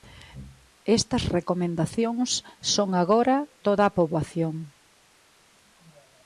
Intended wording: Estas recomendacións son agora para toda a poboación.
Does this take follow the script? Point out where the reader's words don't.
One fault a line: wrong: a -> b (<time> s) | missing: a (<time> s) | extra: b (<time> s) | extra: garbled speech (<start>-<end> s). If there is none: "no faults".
missing: para (3.4 s)